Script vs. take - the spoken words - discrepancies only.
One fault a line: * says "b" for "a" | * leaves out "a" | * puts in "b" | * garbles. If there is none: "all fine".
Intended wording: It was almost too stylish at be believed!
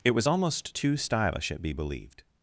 all fine